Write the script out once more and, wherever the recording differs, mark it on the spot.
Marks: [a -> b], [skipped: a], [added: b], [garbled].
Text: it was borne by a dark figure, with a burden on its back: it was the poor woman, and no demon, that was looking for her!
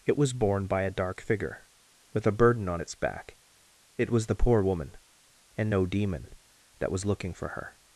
it was borne by a dark figure, with a burden on its back: it was the poor woman, and no demon, that was looking for her!